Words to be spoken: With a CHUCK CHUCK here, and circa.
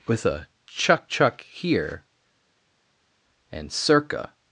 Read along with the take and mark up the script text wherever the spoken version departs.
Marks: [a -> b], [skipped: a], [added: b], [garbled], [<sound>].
With a CHUCK CHUCK here, and circa.